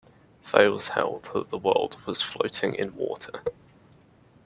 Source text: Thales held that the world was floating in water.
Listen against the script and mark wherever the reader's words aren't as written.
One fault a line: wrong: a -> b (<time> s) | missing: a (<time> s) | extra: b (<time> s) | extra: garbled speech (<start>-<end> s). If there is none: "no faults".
no faults